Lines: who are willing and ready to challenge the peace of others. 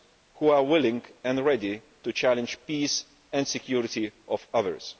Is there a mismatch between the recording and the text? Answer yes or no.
yes